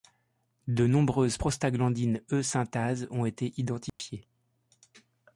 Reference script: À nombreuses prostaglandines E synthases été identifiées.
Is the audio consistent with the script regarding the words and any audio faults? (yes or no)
no